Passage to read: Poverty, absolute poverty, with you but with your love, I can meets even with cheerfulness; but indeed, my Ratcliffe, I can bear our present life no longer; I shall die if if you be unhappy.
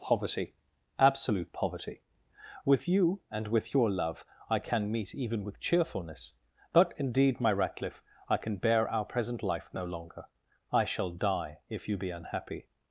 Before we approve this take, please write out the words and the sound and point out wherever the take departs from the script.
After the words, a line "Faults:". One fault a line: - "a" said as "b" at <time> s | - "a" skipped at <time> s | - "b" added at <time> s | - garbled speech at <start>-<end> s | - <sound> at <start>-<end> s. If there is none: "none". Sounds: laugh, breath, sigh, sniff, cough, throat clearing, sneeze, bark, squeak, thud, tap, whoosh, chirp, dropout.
Poverty, absolute poverty, with you and with your love, I can meet even with cheerfulness; but indeed, my Ratcliffe, I can bear our present life no longer; I shall die if you be unhappy.
Faults:
- "but" said as "and" at 3.3 s
- "meets" said as "meet" at 4.9 s
- "if" skipped at 11.9 s